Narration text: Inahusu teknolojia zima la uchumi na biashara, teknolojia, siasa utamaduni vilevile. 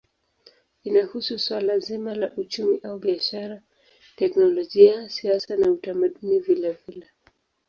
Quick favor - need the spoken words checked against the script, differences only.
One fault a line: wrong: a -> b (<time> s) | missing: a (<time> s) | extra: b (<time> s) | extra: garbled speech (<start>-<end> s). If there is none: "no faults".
wrong: teknolojia -> suala (1.4 s)
wrong: na -> au (2.8 s)
extra: na (5.6 s)